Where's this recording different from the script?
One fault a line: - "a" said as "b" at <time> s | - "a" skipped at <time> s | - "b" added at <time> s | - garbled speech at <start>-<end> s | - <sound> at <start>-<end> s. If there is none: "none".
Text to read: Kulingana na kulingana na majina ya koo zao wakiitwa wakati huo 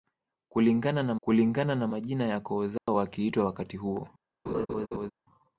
- dropout at 2.8-2.9 s
- laugh at 4.5-5.1 s